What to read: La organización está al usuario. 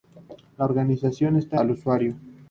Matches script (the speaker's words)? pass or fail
pass